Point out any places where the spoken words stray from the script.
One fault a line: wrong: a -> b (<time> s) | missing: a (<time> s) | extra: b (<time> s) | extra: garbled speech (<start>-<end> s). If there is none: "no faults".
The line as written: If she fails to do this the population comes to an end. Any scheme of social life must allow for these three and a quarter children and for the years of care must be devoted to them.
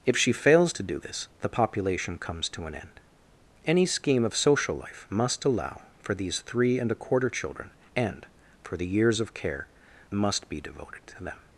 no faults